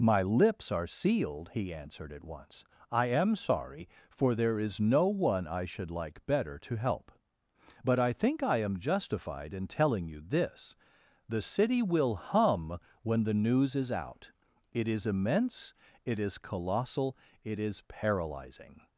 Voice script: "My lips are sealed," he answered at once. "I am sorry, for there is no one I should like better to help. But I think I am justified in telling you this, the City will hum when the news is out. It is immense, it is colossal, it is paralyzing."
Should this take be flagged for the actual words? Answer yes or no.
no